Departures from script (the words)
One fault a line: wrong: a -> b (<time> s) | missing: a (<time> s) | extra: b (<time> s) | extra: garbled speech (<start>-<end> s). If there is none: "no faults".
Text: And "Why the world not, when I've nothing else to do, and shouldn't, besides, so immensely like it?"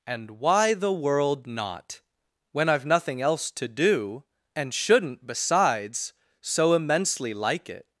no faults